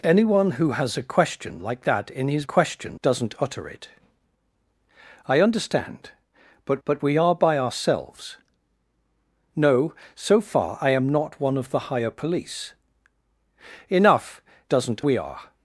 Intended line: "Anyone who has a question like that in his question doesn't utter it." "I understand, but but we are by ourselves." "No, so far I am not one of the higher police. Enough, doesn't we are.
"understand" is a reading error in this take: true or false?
false